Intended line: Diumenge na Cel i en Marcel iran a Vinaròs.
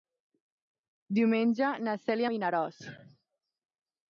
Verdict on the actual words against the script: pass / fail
fail